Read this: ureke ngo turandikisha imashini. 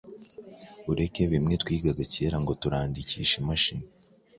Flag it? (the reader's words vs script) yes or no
yes